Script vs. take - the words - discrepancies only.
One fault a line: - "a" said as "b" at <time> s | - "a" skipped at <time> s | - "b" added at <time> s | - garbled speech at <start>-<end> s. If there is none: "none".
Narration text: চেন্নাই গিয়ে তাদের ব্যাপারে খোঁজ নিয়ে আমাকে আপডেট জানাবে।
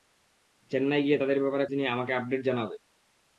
- "খোঁজ" skipped at 1.7 s